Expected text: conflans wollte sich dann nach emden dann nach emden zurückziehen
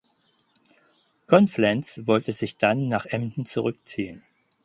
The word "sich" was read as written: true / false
true